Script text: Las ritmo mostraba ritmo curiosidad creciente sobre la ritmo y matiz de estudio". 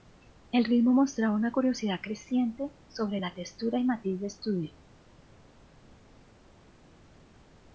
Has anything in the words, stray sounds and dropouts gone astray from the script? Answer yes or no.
yes